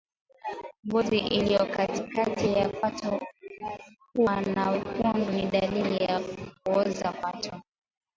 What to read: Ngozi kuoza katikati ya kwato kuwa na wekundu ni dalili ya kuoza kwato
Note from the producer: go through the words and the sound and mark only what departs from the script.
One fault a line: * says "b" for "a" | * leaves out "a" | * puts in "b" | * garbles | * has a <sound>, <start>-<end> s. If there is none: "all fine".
* says "iliyo" for "kuoza"